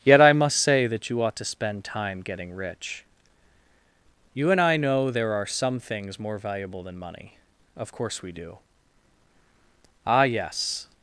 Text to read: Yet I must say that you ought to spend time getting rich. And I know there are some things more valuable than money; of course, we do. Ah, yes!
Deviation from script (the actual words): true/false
true